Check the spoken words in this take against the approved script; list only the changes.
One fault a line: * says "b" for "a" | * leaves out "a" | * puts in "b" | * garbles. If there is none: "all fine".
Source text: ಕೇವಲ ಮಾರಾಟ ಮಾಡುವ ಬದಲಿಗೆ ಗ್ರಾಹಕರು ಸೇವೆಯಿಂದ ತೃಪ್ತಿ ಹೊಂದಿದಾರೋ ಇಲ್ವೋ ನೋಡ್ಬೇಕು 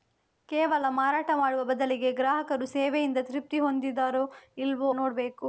all fine